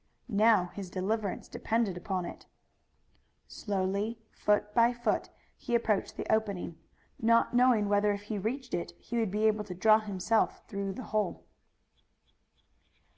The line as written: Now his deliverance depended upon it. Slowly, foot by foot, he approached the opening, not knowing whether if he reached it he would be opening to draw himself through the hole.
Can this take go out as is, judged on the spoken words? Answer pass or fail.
fail